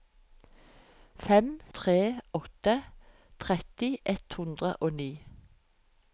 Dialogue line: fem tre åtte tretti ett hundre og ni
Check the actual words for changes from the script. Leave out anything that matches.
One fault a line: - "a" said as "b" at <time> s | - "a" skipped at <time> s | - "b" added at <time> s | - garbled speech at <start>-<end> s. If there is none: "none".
none